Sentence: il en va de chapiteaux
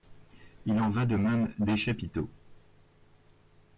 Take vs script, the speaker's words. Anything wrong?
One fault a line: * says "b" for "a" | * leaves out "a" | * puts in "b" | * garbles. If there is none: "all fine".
* puts in "même des"